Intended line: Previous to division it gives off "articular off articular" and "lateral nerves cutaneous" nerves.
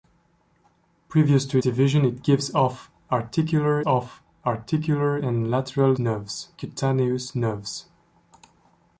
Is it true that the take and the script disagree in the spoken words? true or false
false